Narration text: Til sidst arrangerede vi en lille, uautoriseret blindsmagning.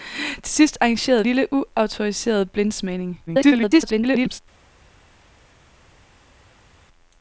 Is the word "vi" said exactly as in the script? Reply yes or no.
no